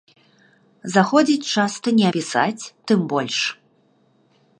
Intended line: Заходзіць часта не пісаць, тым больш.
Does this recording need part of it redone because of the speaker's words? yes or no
no